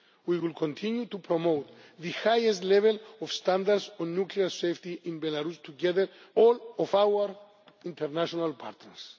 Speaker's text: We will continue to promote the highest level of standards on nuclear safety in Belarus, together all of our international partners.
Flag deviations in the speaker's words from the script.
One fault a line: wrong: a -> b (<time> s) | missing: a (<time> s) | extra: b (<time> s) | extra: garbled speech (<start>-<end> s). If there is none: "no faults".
no faults